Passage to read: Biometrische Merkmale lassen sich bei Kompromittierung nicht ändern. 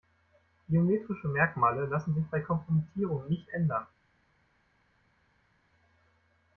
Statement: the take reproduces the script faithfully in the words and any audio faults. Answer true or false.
true